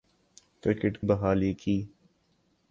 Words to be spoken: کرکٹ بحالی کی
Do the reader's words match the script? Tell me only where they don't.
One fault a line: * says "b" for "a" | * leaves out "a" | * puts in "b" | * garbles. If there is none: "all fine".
all fine